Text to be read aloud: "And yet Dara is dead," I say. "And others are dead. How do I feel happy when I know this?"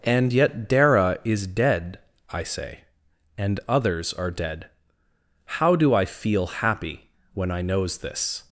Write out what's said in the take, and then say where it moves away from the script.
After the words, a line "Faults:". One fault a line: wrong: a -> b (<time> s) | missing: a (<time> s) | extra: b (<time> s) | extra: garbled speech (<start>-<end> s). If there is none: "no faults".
"And yet Dara is dead," I say. "And others are dead. How do I feel happy when I knows this?"
Faults:
wrong: know -> knows (7.6 s)